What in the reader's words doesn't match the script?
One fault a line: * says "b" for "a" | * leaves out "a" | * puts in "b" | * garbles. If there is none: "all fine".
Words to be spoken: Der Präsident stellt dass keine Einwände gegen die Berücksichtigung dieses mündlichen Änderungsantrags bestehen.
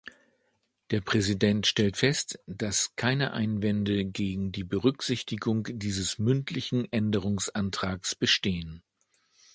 * puts in "fest"